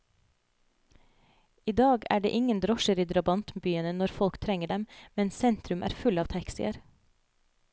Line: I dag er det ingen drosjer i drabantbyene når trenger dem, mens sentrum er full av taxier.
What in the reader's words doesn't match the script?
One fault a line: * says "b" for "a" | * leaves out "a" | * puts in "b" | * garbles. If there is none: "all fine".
* puts in "folk"